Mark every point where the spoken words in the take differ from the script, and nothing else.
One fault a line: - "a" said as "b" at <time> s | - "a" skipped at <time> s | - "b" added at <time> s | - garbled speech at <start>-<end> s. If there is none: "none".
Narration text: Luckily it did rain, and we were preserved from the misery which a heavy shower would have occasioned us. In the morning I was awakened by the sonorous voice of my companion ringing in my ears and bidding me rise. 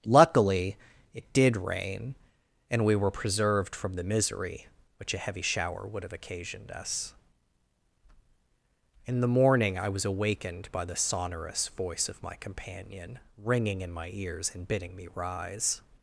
none